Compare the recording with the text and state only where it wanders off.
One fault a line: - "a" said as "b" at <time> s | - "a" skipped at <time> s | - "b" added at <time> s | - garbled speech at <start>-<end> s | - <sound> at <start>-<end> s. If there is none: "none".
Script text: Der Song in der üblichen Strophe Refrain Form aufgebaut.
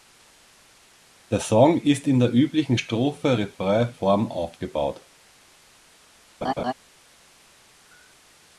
- "ist" added at 1.8 s
- laugh at 6.4-6.7 s